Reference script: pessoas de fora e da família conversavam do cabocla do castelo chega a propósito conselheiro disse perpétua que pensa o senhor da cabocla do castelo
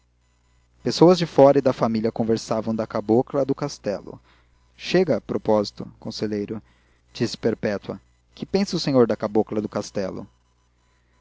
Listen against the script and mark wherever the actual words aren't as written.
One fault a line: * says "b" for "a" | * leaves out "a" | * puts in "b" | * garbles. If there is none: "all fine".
* says "da" for "do"